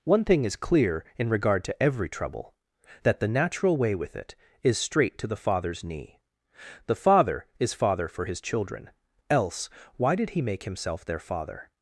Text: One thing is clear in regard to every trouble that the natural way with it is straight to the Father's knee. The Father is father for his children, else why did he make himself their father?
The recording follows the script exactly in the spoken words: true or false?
true